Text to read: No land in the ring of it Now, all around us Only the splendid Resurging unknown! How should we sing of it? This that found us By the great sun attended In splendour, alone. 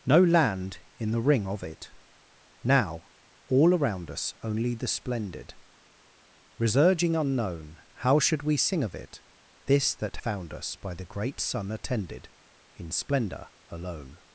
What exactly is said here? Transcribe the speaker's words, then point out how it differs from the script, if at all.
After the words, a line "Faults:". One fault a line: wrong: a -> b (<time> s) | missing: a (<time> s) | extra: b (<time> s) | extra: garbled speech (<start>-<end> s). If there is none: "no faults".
No land in the ring of it Now, all around us Only the splendid Resurging unknown! How should we sing of it? This that found us By the great sun attended In splendour, alone.
Faults:
no faults